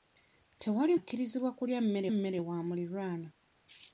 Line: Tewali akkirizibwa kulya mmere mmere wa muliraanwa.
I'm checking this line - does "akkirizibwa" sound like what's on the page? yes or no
yes